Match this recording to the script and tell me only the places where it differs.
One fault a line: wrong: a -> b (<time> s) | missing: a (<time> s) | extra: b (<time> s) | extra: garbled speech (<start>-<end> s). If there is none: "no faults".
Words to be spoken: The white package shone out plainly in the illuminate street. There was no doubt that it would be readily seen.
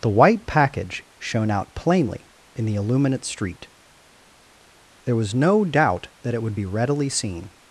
no faults